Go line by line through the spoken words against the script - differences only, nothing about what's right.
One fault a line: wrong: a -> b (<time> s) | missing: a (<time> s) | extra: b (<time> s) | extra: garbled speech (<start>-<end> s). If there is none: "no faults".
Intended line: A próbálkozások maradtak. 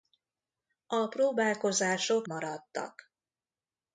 no faults